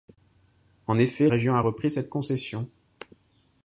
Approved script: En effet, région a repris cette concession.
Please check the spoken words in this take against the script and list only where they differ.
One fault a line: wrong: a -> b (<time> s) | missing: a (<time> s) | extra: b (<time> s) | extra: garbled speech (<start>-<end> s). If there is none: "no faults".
no faults